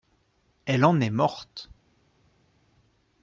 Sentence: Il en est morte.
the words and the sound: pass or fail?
fail